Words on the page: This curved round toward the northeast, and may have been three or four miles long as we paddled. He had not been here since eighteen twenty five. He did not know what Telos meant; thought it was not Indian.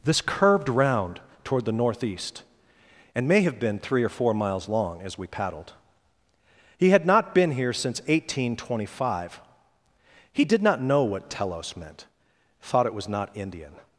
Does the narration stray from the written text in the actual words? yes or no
no